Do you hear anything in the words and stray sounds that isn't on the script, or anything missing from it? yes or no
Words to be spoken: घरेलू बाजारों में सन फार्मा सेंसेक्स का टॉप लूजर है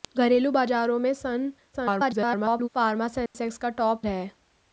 yes